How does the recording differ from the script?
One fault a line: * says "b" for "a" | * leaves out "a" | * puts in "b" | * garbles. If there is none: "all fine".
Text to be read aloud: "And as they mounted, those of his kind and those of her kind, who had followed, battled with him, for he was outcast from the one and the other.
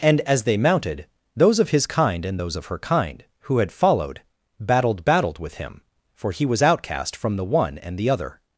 * puts in "battled"